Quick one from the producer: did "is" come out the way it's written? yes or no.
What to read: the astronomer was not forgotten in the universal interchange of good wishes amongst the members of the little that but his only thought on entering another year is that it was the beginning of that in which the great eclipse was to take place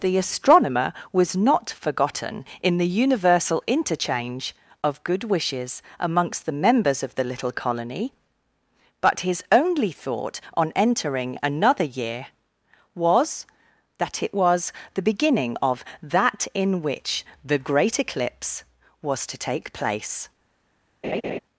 no